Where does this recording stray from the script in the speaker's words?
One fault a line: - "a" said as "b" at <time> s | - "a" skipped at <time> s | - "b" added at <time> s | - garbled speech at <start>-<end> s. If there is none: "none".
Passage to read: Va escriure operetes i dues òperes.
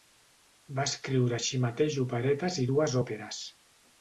- "així mateix" added at 1.4 s